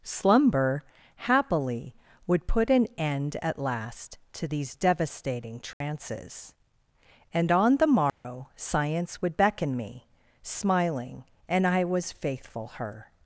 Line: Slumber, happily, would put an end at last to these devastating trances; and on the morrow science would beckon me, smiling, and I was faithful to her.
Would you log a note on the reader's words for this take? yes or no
yes